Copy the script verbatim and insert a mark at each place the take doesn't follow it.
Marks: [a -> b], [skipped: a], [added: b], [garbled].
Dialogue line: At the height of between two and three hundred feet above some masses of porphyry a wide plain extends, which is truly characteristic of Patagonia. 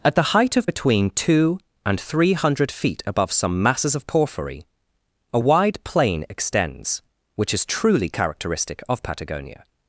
At the height of between two and three hundred feet above some masses of porphyry a wide plain extends, which is truly characteristic of Patagonia.